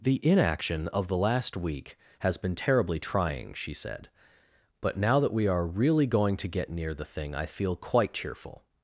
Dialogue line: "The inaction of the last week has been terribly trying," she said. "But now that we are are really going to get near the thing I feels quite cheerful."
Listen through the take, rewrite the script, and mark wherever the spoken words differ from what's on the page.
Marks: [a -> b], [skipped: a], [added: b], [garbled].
"The inaction of the last week has been terribly trying," she said. "But now that we are [skipped: are] really going to get near the thing I [feels -> feel] quite cheerful."